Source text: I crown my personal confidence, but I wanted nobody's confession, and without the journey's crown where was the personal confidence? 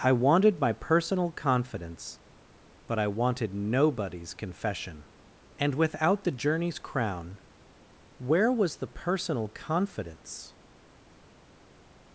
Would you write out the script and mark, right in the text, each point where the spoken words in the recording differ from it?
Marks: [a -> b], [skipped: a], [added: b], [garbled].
I [crown -> wanted] my personal confidence, but I wanted nobody's confession, and without the journey's crown where was the personal confidence?